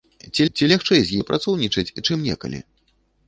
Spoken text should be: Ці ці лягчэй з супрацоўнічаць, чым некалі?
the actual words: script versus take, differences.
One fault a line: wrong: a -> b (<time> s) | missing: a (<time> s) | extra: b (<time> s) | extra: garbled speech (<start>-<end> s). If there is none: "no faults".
no faults